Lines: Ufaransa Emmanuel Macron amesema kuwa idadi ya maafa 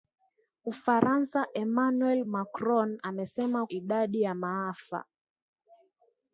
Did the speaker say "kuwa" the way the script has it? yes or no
no